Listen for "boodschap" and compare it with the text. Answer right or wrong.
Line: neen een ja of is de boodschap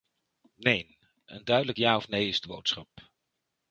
right